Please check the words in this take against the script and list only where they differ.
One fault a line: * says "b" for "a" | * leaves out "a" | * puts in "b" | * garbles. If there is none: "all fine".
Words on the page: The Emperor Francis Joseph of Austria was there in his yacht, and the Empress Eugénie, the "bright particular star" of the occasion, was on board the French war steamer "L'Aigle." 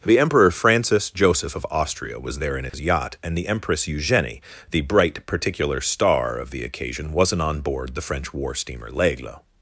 * says "wasn't" for "was"